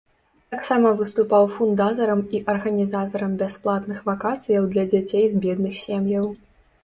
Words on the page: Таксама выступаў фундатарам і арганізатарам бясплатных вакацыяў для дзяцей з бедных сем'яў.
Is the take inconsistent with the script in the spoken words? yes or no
no